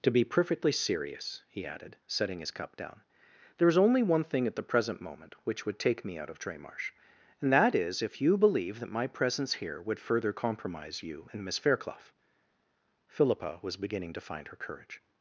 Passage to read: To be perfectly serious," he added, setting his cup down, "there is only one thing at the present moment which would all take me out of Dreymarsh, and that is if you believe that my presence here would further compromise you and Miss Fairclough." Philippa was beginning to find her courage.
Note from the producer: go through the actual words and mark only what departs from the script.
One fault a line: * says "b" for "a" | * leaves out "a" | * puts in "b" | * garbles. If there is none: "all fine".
* leaves out "all"